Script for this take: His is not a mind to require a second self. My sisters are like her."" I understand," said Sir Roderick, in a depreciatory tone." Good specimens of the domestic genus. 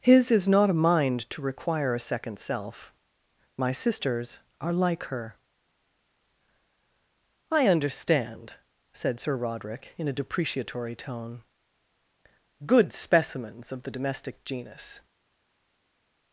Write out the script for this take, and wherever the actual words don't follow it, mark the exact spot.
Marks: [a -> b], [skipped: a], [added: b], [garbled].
His is not a mind to require a second self. My sisters are like her."" I understand," said Sir Roderick, in a depreciatory tone." Good specimens of the domestic genus.